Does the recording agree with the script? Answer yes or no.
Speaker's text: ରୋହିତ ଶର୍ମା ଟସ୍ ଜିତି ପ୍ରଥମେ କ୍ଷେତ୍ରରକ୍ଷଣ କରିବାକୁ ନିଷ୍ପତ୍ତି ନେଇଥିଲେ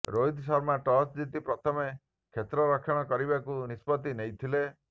yes